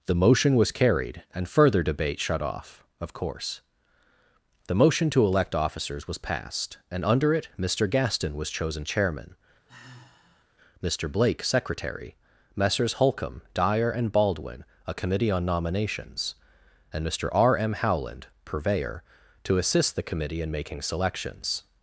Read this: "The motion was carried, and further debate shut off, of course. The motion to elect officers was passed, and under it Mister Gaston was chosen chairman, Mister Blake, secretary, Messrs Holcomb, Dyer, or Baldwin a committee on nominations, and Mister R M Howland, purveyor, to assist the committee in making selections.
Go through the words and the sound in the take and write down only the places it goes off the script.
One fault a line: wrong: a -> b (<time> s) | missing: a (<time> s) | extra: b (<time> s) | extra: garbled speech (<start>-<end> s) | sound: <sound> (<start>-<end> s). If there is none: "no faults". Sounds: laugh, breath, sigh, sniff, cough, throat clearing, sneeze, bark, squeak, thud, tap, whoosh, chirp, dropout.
sound: sigh (9.7-10.4 s)
wrong: or -> and (13.9 s)